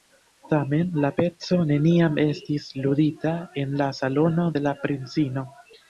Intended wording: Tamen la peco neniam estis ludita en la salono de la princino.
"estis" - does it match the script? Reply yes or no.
yes